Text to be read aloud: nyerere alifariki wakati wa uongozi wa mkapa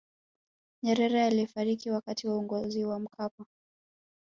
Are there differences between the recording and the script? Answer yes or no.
no